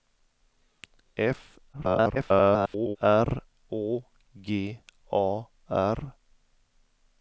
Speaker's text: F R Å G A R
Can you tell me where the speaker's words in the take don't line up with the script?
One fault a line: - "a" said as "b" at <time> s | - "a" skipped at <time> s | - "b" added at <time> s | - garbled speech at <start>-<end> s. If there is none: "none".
- garbled speech at 1.7-3.0 s